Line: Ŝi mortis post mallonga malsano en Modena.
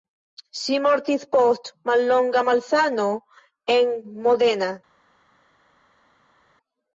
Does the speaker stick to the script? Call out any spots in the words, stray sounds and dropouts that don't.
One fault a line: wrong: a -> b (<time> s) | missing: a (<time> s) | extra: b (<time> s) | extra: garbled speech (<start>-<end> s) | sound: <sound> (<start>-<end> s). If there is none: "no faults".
no faults